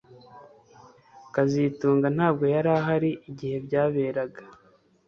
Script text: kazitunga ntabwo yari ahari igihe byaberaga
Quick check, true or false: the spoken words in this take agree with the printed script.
true